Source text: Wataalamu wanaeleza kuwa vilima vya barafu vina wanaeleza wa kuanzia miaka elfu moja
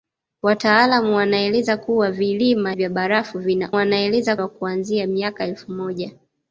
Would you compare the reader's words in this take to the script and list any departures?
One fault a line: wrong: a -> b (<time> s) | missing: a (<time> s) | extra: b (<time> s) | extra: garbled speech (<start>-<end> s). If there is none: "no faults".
no faults